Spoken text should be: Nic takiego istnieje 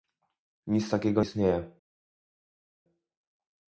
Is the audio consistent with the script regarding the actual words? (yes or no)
yes